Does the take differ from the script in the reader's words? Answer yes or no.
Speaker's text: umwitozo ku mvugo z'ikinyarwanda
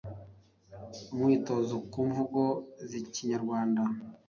no